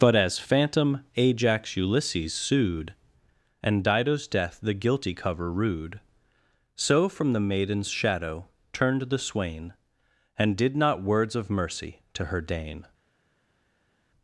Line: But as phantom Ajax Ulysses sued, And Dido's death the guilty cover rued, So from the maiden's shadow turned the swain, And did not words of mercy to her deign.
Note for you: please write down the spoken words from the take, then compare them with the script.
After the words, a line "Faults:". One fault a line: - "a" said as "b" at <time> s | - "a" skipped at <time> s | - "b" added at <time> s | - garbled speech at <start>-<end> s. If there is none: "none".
But as phantom Ajax Ulysses sued, And Dido's death the guilty cover rued, So from the maiden's shadow turned the swain, And did not words of mercy to her deign.
Faults:
none